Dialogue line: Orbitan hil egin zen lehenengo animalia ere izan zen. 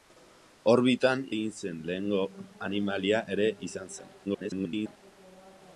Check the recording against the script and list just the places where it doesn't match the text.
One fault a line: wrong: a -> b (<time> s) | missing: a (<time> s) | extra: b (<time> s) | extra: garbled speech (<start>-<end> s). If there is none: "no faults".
missing: hil (1.2 s)
extra: garbled speech (4.2-5.0 s)